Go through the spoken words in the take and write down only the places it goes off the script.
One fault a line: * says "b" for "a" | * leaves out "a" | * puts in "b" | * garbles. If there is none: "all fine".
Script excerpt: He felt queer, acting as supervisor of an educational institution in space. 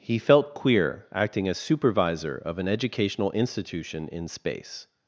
all fine